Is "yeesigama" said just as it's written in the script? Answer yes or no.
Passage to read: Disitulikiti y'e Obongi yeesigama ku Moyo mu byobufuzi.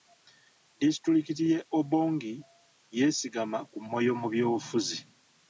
yes